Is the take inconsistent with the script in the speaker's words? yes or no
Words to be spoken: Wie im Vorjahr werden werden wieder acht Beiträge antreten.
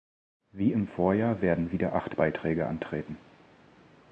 yes